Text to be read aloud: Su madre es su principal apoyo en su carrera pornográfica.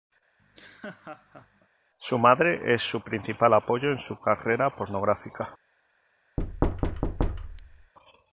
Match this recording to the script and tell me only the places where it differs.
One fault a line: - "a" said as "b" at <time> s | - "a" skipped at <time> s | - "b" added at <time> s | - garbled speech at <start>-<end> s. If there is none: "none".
none